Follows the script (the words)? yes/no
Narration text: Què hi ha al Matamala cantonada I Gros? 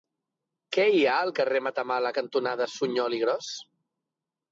no